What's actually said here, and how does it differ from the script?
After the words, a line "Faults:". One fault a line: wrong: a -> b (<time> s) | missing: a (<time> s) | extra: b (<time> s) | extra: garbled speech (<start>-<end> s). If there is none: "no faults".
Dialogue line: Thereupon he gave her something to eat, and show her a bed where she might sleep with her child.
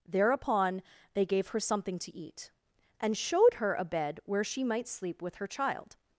Thereupon they gave her something to eat, and showed her a bed where she might sleep with her child.
Faults:
wrong: he -> they (1.1 s)
wrong: show -> showed (3.2 s)